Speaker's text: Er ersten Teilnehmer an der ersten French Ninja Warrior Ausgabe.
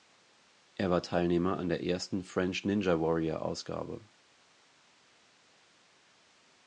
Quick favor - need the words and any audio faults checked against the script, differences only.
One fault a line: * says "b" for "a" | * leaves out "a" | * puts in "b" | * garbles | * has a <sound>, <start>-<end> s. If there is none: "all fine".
* says "war" for "ersten"